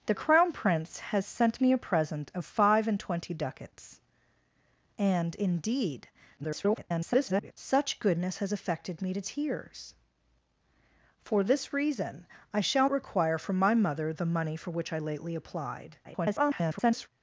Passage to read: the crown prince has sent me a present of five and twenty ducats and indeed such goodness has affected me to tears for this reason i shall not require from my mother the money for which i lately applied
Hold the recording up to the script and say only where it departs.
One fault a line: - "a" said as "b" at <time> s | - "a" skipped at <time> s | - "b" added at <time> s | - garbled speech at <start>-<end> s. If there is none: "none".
- garbled speech at 6.4-7.5 s
- "not" skipped at 12.9 s
- garbled speech at 16.0-17.1 s